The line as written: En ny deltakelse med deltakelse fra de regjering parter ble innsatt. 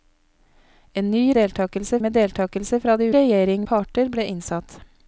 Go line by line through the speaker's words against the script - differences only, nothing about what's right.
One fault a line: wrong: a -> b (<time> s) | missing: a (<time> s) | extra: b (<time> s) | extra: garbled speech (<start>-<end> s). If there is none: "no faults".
no faults